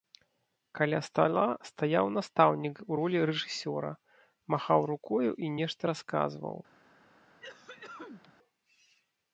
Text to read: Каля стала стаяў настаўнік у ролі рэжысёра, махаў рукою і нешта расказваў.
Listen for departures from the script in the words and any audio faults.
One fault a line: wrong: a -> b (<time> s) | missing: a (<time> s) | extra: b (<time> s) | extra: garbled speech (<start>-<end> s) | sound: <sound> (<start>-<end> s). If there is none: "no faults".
sound: cough (7.4-8.3 s)